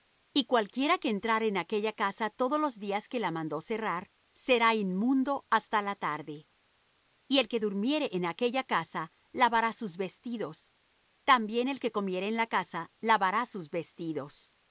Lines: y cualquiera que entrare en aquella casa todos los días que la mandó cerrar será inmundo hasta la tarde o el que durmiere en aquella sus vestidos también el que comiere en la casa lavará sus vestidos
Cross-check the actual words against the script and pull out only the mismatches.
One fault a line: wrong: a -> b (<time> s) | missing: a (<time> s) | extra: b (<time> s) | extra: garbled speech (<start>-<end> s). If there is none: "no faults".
wrong: o -> y (7.3 s)
extra: casa lavará (8.6 s)